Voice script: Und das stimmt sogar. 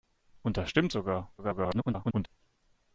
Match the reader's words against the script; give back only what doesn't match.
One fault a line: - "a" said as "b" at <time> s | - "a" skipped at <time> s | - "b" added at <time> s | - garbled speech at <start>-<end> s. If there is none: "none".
- garbled speech at 1.4-2.3 s